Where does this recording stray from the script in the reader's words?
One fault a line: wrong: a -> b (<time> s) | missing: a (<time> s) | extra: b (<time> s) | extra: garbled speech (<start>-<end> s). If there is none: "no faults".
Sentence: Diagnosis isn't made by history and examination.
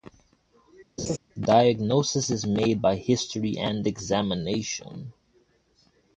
wrong: isn't -> is (2.3 s)